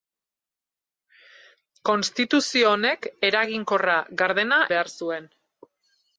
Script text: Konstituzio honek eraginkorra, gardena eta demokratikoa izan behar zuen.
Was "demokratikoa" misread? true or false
true